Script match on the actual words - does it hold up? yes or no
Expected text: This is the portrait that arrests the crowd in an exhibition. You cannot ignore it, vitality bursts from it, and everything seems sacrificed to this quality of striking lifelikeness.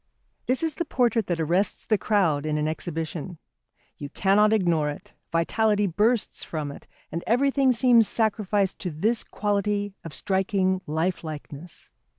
yes